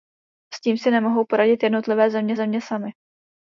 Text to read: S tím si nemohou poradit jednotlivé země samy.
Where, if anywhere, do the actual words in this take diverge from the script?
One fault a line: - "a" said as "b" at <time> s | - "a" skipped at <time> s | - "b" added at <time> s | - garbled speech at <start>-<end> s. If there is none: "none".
- "země" added at 2.4 s